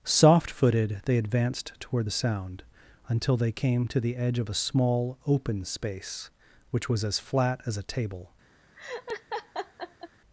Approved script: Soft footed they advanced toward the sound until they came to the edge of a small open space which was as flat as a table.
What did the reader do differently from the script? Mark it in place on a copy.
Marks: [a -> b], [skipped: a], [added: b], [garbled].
Soft footed they advanced toward the sound until they came to the edge of a small open space which was as flat as a table.